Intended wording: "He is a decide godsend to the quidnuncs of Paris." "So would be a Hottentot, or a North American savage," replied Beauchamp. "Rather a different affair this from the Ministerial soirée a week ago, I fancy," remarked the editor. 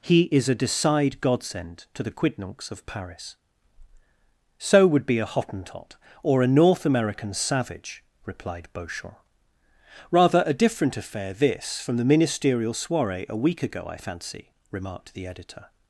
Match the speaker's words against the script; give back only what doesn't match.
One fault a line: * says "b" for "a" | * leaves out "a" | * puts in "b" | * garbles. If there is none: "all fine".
all fine